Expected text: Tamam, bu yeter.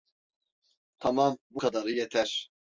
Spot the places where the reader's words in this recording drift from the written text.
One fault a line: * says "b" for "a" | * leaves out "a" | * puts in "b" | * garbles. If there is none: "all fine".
* puts in "kadarı"